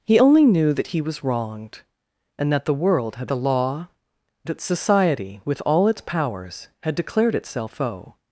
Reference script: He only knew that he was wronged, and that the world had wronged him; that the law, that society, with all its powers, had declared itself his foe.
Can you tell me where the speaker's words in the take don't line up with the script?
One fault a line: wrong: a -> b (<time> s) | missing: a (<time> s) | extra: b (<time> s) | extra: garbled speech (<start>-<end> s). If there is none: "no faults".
missing: wronged him that (3.3 s)
missing: his (7.7 s)